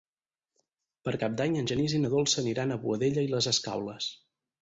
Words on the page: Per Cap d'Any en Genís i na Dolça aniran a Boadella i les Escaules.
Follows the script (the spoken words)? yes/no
yes